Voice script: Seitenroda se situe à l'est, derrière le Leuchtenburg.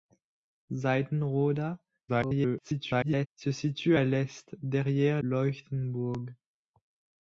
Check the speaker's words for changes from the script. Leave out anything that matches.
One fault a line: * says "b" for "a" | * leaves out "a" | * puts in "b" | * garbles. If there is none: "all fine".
* garbles
* leaves out "le"